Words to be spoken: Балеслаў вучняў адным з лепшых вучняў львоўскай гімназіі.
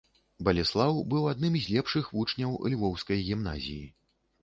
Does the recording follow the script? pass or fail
fail